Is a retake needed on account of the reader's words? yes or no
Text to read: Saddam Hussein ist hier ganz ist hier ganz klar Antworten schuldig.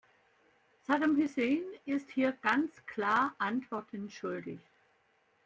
yes